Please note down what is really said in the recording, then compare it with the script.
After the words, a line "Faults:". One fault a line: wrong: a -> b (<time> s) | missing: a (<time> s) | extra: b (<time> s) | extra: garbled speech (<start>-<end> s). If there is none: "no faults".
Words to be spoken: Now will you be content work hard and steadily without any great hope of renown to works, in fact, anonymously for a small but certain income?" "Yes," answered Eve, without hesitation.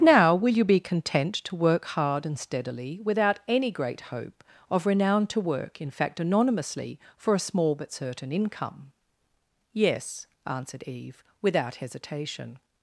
Now will you be content to work hard and steadily without any great hope of renown to work, in fact, anonymously for a small but certain income?" "Yes," answered Eve, without hesitation.
Faults:
extra: to (1.4 s)
wrong: works -> work (5.4 s)